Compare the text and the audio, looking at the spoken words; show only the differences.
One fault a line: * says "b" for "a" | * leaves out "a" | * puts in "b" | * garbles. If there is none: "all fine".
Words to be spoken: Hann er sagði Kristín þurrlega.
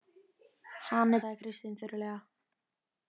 all fine